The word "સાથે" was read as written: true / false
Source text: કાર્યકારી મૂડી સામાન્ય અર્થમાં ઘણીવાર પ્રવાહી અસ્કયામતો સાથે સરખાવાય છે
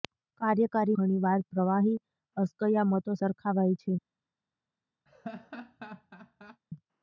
false